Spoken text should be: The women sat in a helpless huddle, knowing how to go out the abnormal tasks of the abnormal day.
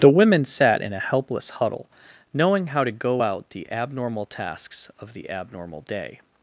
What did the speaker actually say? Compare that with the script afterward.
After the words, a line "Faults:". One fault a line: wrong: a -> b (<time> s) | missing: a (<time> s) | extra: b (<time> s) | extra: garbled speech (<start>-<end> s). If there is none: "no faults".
The women sat in a helpless huddle, knowing how to go out the abnormal tasks of the abnormal day.
Faults:
no faults